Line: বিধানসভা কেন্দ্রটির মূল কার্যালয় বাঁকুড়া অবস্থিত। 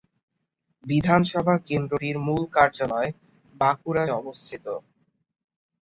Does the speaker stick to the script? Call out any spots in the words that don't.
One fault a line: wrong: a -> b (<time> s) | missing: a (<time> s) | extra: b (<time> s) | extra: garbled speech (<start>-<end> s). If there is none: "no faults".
no faults